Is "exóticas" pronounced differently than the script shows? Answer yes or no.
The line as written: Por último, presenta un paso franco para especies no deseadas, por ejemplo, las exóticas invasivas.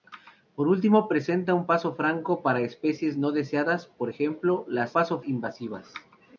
yes